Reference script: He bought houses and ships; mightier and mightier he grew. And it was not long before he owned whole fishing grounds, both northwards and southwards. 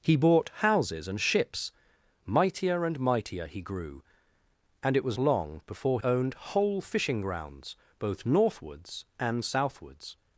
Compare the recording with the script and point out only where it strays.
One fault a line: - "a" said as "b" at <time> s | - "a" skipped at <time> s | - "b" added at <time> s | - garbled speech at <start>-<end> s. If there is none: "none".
- "not" skipped at 5.2 s
- "he" skipped at 6.0 s